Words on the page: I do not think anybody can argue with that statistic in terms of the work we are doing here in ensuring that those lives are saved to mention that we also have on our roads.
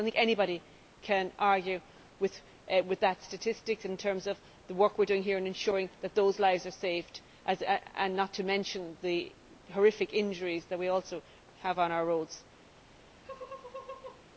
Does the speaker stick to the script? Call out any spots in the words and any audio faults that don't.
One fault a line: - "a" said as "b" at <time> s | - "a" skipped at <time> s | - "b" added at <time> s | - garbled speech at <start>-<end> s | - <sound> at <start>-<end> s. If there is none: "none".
- "not" added at 8.1 s
- "the horrific injuries" added at 9.0 s
- laugh at 13.2-14.2 s